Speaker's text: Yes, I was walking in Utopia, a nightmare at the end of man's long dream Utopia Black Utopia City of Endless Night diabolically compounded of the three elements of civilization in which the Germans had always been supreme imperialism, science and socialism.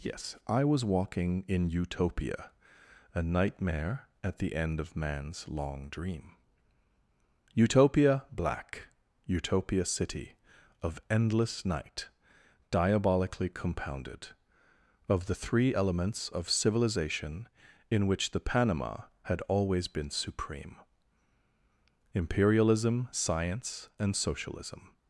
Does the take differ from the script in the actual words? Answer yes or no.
yes